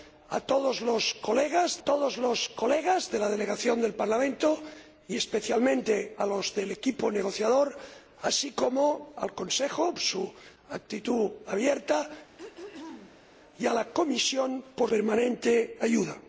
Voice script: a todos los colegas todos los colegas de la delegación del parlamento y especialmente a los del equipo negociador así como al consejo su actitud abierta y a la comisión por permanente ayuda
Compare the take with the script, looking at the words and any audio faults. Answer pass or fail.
fail